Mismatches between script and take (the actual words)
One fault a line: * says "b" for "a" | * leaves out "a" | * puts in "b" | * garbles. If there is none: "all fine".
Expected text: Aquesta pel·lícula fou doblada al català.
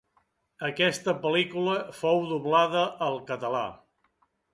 all fine